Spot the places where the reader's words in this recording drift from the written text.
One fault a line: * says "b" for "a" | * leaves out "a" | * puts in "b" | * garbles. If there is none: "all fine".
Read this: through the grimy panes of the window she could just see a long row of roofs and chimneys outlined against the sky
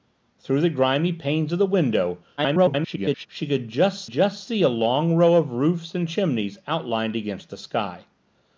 * garbles
* puts in "just"